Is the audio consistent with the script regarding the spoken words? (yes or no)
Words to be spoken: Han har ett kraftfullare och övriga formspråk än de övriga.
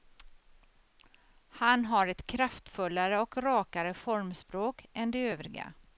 no